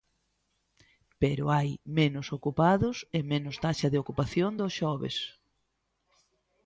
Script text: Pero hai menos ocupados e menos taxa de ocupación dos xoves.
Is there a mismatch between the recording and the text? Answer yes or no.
no